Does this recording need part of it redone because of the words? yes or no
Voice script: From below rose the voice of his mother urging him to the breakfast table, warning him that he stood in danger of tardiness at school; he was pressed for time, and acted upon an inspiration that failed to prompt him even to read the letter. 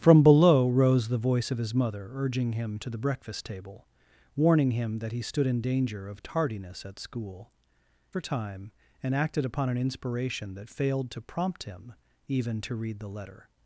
yes